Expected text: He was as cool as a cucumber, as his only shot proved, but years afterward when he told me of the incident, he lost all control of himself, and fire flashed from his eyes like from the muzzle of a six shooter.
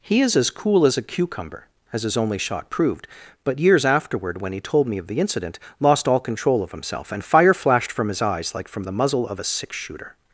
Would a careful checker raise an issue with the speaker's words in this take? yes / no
yes